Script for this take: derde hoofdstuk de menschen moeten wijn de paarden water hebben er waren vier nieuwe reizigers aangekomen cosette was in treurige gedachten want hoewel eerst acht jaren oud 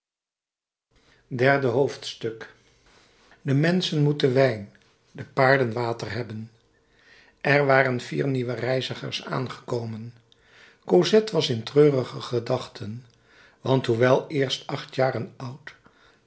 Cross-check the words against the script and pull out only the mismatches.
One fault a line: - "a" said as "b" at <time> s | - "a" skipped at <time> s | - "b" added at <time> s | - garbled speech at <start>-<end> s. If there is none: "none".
none